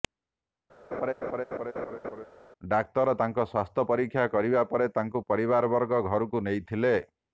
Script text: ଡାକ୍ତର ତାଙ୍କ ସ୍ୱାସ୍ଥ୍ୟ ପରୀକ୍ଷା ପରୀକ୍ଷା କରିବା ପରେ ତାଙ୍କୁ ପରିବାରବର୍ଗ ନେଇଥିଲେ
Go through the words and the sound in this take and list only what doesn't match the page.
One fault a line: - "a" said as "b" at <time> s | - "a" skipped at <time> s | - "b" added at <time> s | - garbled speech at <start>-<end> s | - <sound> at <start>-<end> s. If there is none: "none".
- laugh at 0.9-2.3 s
- "ପରୀକ୍ଷା" skipped at 4.3 s
- "ଘରକୁ" added at 6.1 s